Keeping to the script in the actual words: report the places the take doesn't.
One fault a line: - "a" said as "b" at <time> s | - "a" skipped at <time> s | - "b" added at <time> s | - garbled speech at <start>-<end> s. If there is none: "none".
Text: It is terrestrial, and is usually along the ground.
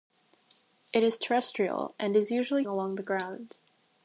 none